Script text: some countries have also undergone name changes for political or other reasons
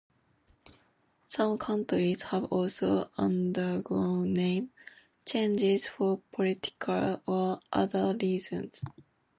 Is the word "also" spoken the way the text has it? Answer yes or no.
yes